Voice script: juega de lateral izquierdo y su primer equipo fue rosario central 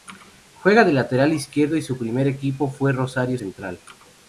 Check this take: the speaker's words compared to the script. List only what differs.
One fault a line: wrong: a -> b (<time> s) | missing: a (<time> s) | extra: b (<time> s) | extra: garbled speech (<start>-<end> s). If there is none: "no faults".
no faults